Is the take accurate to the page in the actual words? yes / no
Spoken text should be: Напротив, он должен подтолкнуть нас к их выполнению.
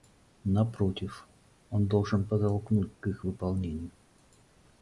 no